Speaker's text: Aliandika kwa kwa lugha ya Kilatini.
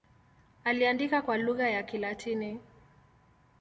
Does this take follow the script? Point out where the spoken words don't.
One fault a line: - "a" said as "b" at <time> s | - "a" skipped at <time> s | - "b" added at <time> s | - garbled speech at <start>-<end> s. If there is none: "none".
- "kwa" skipped at 1.4 s